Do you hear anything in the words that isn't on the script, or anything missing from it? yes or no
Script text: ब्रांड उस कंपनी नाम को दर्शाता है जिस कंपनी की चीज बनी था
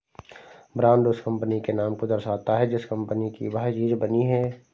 yes